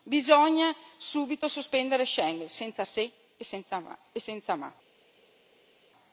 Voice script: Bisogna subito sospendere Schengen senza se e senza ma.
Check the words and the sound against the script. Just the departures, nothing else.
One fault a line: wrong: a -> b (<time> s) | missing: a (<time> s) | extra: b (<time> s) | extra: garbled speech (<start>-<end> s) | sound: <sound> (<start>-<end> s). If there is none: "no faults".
no faults